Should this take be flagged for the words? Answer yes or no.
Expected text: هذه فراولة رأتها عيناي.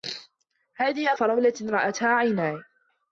no